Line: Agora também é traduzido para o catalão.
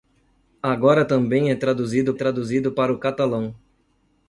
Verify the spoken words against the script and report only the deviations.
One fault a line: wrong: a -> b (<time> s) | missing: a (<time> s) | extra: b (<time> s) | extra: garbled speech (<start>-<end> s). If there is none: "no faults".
extra: traduzido (2.1 s)